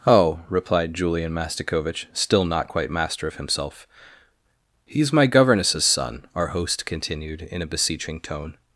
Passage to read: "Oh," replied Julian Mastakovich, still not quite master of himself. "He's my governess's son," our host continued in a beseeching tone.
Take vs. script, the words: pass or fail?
pass